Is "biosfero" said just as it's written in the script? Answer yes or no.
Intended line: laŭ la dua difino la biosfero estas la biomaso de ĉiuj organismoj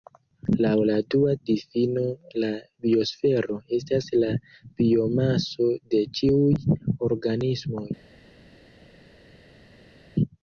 yes